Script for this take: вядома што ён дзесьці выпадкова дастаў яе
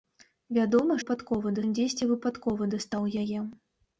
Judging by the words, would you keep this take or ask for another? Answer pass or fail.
fail